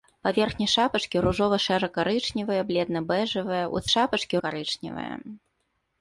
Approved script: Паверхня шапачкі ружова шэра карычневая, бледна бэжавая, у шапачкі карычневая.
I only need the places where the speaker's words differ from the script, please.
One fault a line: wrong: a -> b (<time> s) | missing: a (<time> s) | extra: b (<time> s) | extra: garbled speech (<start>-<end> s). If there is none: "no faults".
no faults